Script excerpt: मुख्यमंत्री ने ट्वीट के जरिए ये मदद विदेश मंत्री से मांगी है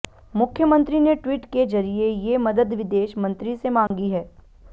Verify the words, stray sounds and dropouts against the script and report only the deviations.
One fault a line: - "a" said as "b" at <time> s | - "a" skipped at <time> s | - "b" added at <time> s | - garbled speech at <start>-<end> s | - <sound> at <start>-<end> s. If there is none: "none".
- dropout at 3.9-3.9 s